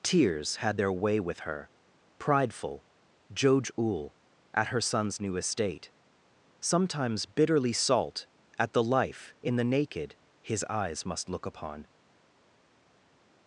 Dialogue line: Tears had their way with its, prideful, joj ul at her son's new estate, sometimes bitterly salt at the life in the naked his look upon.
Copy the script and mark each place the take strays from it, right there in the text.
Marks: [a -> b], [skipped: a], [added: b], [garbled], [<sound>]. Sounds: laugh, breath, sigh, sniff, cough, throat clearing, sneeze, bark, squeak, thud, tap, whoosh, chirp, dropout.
Tears had their way with [its, -> her] prideful, joj ul at her son's new estate, sometimes bitterly salt at the life in the naked his [added: eyes must] look upon.